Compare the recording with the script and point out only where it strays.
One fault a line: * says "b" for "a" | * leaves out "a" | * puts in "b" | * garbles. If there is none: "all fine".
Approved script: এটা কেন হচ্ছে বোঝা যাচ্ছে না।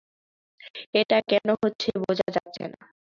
all fine